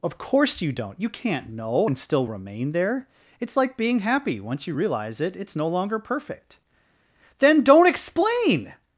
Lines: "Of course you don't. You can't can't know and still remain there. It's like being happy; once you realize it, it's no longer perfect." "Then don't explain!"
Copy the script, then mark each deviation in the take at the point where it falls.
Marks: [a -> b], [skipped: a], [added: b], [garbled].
"Of course you don't. You can't [skipped: can't] know and still remain there. It's like being happy; once you realize it, it's no longer perfect." "Then don't explain!"